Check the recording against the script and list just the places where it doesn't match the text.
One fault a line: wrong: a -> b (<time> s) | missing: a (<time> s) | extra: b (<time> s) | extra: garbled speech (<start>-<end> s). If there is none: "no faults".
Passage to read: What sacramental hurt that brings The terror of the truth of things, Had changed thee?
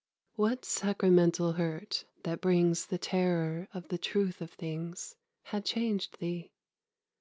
no faults